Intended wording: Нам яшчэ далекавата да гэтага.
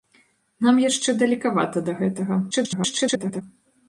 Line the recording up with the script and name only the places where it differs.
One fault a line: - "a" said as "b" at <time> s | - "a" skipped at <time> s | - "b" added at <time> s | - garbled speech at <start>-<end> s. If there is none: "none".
- garbled speech at 2.5-3.4 s